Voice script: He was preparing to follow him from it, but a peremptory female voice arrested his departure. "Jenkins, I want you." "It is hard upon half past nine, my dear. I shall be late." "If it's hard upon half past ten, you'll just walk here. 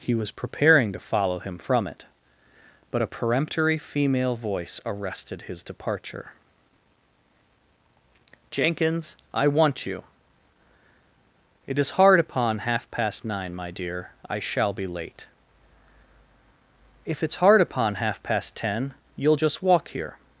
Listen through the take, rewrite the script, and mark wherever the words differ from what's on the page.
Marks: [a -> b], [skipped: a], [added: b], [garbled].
He was preparing to follow him from it, but a peremptory female voice arrested his departure. "Jenkins, I want you." "It is hard upon half past nine, my dear. I shall be late." "If it's hard upon half past ten, you'll just walk here.